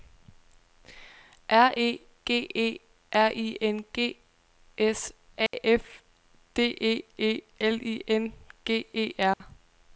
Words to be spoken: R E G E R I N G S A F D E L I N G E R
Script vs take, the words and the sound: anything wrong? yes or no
yes